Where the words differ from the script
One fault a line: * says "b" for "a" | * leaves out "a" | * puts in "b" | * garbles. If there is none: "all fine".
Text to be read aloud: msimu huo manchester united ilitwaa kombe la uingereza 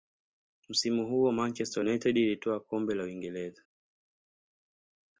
all fine